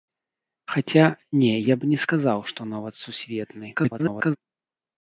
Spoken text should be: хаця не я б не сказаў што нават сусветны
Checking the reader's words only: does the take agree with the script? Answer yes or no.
no